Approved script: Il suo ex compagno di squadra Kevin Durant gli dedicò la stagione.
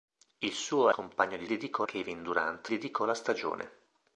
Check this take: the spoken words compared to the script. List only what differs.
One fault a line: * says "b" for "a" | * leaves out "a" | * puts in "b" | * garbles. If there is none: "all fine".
* leaves out "ex"
* says "dedicò" for "squadra"
* leaves out "gli"